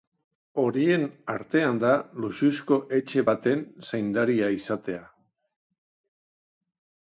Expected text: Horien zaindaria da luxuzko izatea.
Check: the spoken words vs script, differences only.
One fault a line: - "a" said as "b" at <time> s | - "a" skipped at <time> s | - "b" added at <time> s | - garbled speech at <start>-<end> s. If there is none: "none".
- "zaindaria" said as "artean" at 1.3 s
- "etxe baten zaindaria" added at 3.0 s